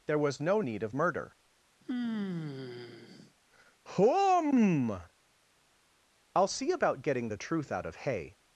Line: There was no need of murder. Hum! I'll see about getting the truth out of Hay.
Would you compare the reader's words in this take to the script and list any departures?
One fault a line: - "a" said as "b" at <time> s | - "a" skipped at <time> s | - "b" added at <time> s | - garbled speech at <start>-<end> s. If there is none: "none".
none